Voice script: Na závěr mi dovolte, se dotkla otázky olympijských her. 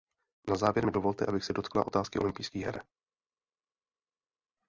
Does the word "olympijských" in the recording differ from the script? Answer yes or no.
no